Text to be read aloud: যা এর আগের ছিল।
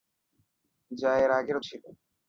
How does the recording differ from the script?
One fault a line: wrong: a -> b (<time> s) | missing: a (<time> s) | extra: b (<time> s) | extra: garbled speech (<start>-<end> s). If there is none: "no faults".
no faults